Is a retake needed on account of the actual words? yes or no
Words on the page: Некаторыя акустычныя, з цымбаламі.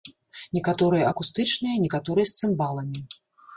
yes